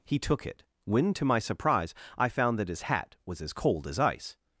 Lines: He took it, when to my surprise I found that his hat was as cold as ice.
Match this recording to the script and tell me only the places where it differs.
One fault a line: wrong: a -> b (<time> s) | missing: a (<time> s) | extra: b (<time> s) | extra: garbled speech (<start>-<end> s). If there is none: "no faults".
no faults